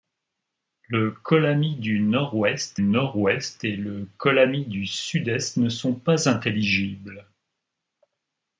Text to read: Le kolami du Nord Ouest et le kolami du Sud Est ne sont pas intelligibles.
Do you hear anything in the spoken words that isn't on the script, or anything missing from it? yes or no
yes